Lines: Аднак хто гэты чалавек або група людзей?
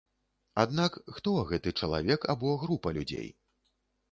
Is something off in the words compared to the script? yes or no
no